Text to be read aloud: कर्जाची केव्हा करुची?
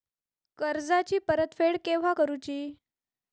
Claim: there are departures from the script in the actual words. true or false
true